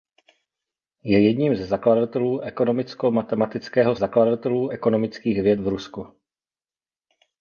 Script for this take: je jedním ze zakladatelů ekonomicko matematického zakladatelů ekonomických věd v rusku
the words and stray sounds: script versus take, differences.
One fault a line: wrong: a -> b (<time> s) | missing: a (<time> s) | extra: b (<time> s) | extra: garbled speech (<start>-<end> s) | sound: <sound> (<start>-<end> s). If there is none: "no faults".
no faults